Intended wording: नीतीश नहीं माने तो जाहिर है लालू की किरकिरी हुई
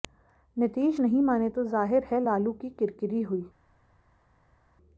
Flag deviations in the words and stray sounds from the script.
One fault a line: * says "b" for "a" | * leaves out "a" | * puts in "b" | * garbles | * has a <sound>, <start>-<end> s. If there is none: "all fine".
all fine